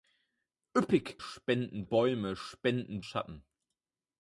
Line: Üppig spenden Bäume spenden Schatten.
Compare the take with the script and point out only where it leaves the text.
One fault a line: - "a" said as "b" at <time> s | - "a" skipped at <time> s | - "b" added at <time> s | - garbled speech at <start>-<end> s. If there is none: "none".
none